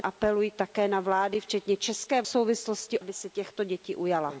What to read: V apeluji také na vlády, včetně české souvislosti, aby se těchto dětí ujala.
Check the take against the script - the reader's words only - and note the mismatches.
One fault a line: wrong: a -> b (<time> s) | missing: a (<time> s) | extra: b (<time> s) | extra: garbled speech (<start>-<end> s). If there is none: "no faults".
no faults